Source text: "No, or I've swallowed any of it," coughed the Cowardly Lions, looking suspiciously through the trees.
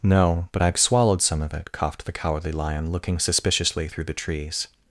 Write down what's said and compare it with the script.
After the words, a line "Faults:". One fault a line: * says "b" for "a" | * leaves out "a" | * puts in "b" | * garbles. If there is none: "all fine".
"No, but I've swallowed some of it," coughed the Cowardly Lion, looking suspiciously through the trees.
Faults:
* says "but" for "or"
* says "some" for "any"
* says "Lion" for "Lions"